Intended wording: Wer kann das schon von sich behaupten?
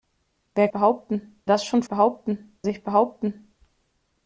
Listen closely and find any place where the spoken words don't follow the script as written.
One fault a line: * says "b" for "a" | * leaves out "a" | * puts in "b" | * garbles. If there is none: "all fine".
* says "behaupten" for "kann"
* says "behaupten" for "von"